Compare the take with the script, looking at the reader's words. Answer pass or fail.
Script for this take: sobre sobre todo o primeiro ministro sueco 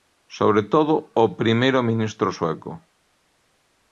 fail